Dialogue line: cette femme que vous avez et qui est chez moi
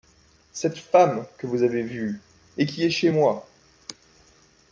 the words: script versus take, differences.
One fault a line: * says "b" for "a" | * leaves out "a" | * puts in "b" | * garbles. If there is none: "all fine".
* puts in "vue"